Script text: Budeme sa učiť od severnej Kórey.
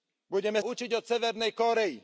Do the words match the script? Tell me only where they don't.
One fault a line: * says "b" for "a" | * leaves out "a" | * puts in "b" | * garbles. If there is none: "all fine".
* leaves out "sa"